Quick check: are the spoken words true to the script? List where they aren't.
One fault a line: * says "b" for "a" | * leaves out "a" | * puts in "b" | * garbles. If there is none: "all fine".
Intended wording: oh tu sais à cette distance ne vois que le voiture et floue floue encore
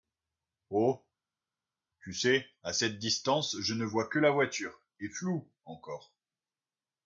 * puts in "je"
* says "la" for "le"
* leaves out "floue"